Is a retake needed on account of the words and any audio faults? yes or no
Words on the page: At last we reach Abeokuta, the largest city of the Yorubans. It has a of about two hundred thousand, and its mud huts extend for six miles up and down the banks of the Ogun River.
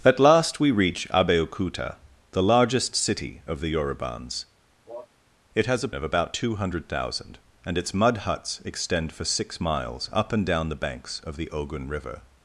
yes